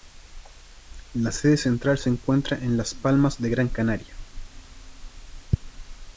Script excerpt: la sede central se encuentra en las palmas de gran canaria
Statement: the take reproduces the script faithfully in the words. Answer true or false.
true